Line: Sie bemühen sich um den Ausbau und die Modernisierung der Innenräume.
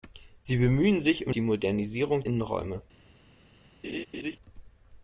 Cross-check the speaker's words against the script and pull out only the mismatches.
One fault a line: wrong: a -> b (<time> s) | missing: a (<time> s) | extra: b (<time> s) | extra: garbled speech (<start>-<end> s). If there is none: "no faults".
missing: den Ausbau und (1.4 s)
missing: der (2.2 s)